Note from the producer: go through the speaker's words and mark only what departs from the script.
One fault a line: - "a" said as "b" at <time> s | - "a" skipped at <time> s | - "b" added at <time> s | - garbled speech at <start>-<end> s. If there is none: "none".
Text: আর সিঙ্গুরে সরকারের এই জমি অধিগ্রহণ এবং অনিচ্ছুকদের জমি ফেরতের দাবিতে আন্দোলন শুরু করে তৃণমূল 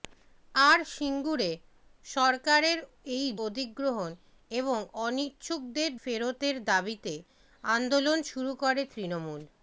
- "জমি" skipped at 3.2 s
- "জমি" skipped at 5.9 s